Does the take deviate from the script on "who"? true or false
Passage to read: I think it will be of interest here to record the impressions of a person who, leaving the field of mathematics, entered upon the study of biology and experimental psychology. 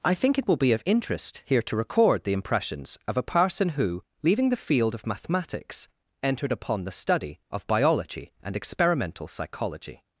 false